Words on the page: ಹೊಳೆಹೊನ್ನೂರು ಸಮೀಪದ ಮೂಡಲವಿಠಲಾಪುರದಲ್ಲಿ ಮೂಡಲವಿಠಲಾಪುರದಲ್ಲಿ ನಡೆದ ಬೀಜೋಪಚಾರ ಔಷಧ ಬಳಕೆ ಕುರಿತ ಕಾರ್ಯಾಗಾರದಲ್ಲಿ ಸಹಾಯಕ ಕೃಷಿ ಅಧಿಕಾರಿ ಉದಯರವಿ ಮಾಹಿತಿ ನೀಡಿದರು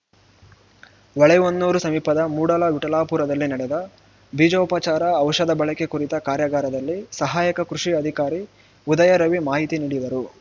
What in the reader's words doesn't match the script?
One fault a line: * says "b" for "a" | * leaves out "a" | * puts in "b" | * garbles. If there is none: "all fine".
* leaves out "ಮೂಡಲವಿಠಲಾಪುರದಲ್ಲಿ"